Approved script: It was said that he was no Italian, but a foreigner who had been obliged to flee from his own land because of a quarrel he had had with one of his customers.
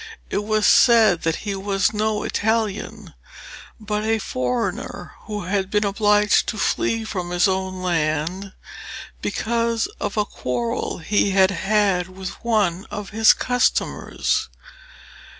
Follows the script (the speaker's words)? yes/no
yes